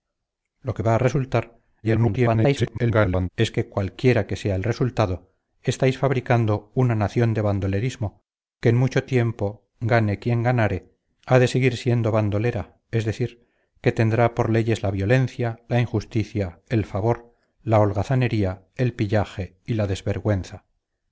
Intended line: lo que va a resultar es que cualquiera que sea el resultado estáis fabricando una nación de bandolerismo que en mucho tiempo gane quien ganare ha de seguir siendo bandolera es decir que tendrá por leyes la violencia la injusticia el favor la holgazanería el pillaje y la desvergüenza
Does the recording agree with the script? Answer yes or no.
no